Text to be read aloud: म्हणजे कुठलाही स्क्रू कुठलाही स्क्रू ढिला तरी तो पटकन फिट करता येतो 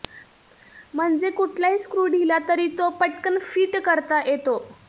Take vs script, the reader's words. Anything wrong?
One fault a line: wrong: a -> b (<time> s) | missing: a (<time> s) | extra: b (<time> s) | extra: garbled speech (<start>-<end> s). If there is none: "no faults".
missing: कुठलाही स्क्रू (2.0 s)